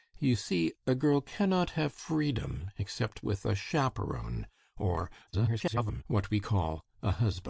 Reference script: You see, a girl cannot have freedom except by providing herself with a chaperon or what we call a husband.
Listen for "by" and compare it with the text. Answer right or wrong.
wrong